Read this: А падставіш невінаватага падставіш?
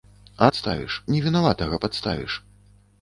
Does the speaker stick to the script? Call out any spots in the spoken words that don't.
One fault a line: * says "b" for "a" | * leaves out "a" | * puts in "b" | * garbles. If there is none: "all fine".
all fine